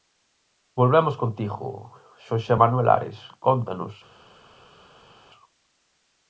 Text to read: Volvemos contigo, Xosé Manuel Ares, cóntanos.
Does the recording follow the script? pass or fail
pass